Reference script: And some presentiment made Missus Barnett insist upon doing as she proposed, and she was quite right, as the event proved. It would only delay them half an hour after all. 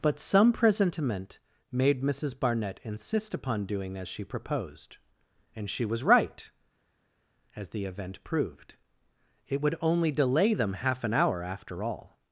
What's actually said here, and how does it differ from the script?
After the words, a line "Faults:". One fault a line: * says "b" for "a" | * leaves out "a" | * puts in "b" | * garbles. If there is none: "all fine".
But some presentiment made Missus Barnett insist upon doing as she proposed, and she was right, as the event proved. It would only delay them half an hour after all.
Faults:
* says "But" for "And"
* leaves out "quite"